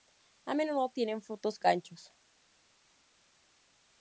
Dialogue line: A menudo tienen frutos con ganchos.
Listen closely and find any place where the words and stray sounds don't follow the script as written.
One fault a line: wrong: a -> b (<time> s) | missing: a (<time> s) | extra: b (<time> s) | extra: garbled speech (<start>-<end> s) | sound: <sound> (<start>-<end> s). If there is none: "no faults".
missing: con (1.6 s)